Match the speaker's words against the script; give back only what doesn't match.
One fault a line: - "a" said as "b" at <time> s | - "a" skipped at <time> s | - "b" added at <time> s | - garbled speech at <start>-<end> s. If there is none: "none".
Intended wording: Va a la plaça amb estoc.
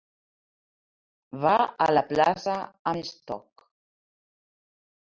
none